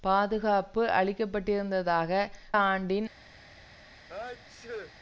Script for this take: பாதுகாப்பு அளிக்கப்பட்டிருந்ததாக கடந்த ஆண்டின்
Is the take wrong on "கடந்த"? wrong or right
wrong